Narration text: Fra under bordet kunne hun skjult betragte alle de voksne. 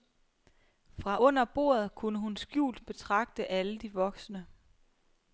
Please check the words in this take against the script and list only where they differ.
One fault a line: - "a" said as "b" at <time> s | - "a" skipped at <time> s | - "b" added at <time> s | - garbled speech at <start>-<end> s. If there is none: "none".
none